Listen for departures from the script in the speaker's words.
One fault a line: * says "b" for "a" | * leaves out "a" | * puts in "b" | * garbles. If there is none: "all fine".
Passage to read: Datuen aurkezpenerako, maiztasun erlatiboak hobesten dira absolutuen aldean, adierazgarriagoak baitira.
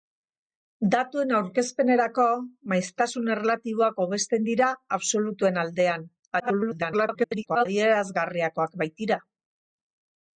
* garbles